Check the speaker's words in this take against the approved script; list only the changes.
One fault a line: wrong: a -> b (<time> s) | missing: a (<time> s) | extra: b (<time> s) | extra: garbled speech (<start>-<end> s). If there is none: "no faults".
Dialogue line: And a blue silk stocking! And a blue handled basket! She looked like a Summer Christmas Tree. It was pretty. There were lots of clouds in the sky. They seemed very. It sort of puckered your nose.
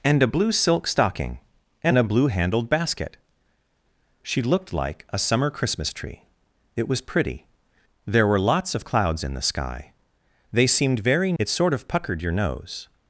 no faults